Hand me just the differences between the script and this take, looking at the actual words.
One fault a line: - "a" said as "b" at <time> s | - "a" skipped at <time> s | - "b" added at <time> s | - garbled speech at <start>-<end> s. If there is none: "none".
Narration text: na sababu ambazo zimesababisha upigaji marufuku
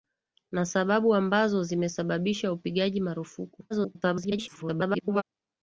- garbled speech at 3.7-5.2 s